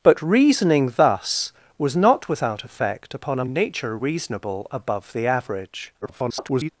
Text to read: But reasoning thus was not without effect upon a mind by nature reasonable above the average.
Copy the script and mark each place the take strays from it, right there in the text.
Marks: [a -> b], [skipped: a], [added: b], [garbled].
But reasoning thus was not without effect upon a [skipped: mind by] nature reasonable above the average. [garbled]